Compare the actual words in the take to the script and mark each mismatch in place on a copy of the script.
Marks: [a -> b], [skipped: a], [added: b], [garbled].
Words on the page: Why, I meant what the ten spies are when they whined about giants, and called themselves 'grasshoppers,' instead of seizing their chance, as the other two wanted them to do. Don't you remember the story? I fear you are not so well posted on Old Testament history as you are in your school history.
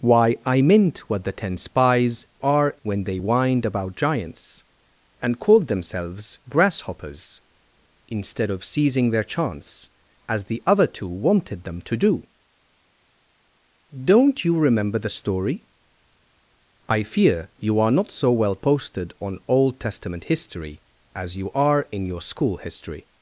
Why, I meant what the ten spies are when they whined about giants, and called themselves 'grasshoppers,' instead of seizing their chance, as the other two wanted them to do. Don't you remember the story? I fear you are not so well posted on Old Testament history as you are in your school history.